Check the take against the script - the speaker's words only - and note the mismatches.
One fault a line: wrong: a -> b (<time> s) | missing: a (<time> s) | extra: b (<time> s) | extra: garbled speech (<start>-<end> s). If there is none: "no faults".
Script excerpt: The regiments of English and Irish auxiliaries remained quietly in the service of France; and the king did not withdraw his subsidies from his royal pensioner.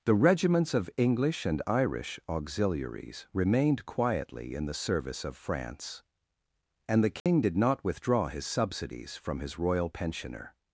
no faults